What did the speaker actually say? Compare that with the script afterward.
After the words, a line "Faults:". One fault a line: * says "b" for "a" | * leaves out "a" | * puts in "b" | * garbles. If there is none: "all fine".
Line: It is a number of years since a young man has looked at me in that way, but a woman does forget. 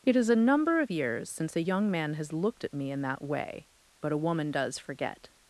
It is a number of years since a young man has looked at me in that way, but a woman does forget.
Faults:
all fine